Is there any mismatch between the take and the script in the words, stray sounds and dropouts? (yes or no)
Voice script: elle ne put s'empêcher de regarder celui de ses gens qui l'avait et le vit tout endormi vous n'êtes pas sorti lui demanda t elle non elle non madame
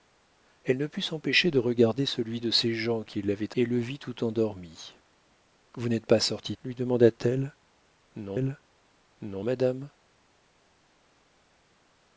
no